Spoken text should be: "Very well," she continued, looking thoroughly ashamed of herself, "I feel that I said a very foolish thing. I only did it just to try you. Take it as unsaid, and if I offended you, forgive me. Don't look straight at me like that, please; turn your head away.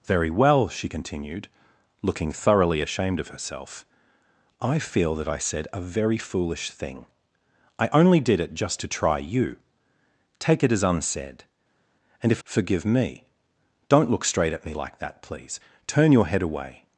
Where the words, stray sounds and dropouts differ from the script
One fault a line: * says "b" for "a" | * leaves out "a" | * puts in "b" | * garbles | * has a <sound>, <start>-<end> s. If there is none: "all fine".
* leaves out "I offended you"